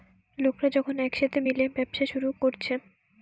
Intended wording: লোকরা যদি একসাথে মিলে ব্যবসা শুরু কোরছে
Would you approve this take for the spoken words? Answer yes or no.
no